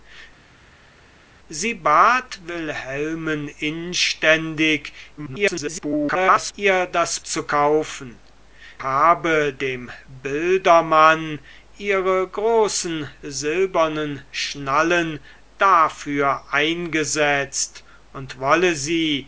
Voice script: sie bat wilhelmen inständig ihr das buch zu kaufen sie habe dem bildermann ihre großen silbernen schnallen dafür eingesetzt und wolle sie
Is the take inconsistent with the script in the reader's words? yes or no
yes